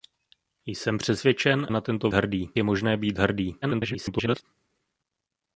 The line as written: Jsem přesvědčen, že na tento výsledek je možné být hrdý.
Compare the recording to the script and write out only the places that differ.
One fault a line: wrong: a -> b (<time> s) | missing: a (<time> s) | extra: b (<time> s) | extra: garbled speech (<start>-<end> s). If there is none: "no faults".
missing: že (1.7 s)
wrong: výsledek -> hrdý (2.1 s)
extra: garbled speech (3.6-4.4 s)